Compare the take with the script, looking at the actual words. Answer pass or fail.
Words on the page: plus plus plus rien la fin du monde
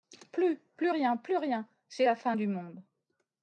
fail